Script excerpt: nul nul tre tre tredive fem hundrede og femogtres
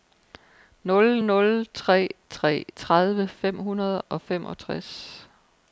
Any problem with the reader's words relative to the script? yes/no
no